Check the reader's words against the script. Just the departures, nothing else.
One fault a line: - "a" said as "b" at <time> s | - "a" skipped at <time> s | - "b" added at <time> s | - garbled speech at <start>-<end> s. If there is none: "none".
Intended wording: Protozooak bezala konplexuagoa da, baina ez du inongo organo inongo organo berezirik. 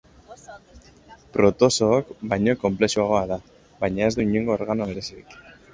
- "bezala" said as "baino" at 2.3 s
- "inongo organo" skipped at 4.9 s